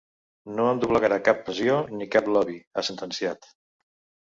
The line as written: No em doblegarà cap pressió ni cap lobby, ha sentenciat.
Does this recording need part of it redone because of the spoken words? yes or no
no